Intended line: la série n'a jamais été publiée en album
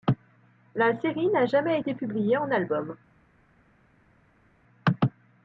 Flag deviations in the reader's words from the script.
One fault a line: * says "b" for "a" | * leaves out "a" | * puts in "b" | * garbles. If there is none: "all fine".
all fine